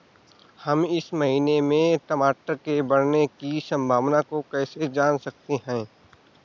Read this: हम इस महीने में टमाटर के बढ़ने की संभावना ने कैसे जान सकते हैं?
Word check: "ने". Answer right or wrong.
wrong